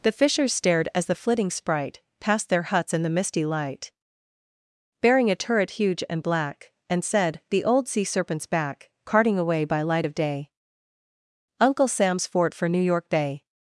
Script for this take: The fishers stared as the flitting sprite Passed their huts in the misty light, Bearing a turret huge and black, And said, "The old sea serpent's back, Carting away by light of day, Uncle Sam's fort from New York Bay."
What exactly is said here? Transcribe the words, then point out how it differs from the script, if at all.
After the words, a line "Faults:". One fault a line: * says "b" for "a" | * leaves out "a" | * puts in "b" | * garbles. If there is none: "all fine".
The fishers stared as the flitting sprite Passed their huts in the misty light, Bearing a turret huge and black, And said, "The old sea serpent's back, Carting away by light of day, Uncle Sam's fort for New York Bay."
Faults:
* says "for" for "from"